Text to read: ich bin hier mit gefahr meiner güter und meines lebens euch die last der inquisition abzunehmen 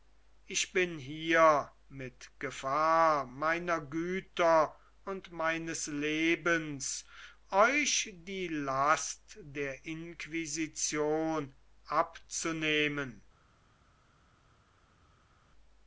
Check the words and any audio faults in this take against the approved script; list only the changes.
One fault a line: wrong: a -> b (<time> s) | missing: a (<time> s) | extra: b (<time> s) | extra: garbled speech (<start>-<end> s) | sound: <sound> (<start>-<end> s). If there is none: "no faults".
no faults